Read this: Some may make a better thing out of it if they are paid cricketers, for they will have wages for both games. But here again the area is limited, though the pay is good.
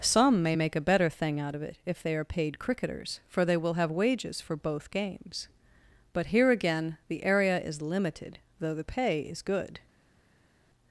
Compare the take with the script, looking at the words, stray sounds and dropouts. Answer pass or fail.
pass